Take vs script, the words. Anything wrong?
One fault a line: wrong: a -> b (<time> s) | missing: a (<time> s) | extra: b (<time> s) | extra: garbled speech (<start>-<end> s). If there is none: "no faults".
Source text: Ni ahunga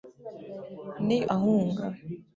no faults